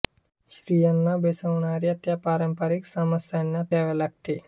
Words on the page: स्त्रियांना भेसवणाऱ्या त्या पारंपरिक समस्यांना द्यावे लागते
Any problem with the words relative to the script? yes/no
no